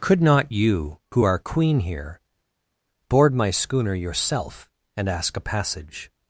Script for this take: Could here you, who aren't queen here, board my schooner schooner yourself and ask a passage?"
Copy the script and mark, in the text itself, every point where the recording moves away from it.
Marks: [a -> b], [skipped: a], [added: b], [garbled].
Could [here -> not] you, who [aren't -> are] queen here, board my schooner [skipped: schooner] yourself and ask a passage?"